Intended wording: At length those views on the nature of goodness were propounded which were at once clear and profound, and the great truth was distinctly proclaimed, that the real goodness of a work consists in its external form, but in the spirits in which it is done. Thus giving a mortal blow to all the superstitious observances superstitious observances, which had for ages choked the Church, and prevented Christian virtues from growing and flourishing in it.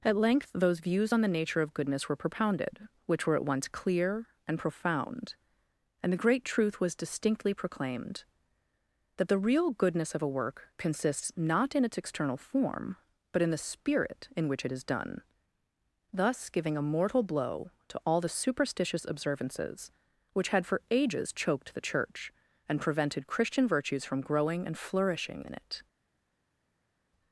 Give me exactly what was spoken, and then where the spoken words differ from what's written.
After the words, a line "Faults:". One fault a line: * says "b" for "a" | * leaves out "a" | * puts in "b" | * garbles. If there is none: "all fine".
At length those views on the nature of goodness were propounded which were at once clear and profound, and the great truth was distinctly proclaimed, that the real goodness of a work consists not in its external form, but in the spirit in which it is done. Thus giving a mortal blow to all the superstitious observances, which had for ages choked the Church, and prevented Christian virtues from growing and flourishing in it.
Faults:
* puts in "not"
* says "spirit" for "spirits"
* leaves out "superstitious observances"